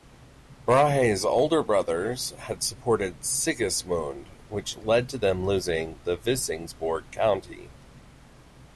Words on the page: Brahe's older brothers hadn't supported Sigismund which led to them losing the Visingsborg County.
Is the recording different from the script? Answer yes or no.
yes